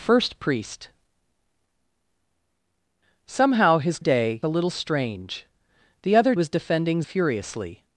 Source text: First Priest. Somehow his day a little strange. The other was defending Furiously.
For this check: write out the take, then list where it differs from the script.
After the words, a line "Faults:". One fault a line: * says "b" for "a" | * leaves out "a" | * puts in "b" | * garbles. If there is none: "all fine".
First Priest. Somehow his day a little strange. The other was defending Furiously.
Faults:
all fine